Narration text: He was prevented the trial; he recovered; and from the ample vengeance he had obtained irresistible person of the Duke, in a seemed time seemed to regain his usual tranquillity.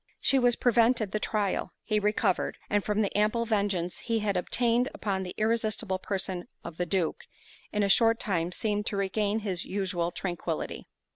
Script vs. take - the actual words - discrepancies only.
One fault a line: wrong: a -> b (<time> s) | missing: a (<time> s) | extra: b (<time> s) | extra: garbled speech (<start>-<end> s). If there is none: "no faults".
wrong: He -> She (0.2 s)
extra: upon the (4.9 s)
wrong: seemed -> short (7.9 s)